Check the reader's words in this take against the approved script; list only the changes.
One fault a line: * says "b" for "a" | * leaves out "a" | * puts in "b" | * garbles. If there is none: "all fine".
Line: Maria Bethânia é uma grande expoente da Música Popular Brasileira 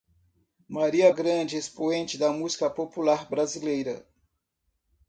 * leaves out "Bethânia é uma"